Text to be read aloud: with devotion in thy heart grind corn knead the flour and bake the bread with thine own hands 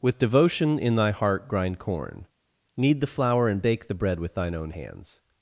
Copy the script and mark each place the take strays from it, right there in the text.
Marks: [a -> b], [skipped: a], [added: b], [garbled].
with devotion in thy heart grind corn knead the flour and bake the bread with thine own hands